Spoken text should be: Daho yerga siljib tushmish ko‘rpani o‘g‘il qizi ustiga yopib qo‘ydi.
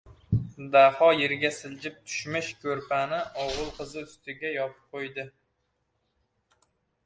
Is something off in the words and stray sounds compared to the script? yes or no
no